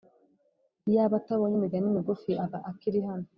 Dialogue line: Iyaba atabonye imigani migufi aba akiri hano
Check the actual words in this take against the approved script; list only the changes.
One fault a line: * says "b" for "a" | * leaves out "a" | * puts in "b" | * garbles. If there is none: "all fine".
all fine